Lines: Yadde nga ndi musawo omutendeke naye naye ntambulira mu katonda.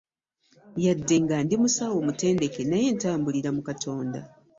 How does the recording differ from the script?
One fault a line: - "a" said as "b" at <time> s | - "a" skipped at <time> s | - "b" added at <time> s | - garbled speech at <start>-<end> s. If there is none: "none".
- "naye" skipped at 2.9 s